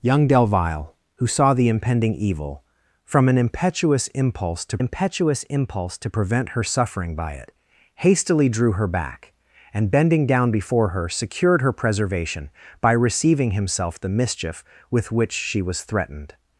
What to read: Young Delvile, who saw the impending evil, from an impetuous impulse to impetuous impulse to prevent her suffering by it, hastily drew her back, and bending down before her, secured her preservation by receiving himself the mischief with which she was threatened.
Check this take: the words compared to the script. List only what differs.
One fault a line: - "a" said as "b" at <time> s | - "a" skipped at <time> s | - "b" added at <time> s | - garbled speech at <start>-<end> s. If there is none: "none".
none